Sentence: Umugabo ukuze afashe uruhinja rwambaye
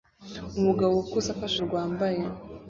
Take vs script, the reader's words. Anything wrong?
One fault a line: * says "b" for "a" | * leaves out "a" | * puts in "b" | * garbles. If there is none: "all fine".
* leaves out "uruhinja"